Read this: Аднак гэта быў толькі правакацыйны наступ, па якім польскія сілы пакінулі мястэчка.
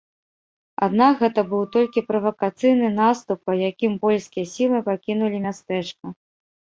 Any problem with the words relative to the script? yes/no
no